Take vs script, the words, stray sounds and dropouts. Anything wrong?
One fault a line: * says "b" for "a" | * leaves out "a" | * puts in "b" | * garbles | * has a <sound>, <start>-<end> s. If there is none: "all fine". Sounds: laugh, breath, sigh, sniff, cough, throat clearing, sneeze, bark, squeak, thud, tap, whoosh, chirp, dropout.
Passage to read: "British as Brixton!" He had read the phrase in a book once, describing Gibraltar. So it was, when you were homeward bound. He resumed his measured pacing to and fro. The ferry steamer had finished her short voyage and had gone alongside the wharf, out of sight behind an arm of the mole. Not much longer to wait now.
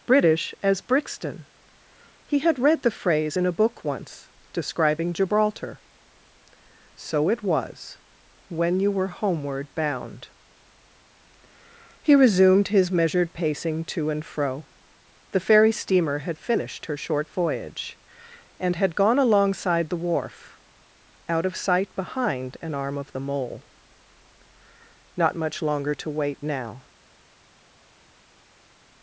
all fine